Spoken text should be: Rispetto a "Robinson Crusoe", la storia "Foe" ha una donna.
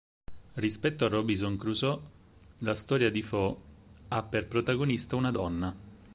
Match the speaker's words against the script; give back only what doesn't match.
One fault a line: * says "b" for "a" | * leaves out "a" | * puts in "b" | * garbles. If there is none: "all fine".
* puts in "di"
* puts in "per protagonista"